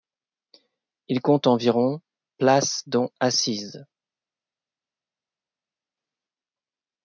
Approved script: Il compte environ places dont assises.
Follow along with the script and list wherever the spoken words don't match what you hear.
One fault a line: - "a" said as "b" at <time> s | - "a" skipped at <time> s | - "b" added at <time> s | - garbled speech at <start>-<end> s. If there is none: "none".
none